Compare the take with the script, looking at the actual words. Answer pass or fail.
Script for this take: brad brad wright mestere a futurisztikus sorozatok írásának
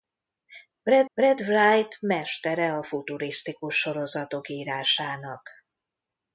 pass